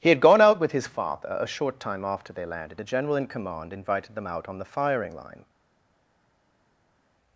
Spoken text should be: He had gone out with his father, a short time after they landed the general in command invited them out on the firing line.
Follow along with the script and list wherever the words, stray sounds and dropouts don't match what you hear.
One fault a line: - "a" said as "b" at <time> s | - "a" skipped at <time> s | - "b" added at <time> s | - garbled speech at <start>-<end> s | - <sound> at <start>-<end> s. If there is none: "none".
none